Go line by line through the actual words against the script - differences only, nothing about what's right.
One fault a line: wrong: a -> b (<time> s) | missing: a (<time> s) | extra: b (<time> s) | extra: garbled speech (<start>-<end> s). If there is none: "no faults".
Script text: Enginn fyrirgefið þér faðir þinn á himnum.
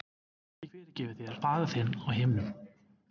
no faults